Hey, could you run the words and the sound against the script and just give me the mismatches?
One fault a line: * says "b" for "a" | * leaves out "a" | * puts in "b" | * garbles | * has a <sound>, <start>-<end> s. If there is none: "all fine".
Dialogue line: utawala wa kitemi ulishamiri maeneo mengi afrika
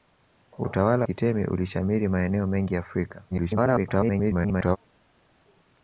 * leaves out "wa"
* garbles